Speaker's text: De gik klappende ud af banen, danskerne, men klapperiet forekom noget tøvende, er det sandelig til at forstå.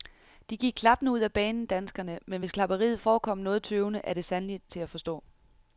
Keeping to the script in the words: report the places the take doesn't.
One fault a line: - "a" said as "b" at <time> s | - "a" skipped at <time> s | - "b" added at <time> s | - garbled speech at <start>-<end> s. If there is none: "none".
- "hvis" added at 2.4 s